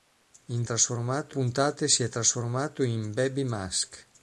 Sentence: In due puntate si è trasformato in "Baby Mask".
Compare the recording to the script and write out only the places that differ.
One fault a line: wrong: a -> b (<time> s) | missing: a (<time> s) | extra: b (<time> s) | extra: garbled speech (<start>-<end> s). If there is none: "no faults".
wrong: due -> trasformato (0.6 s)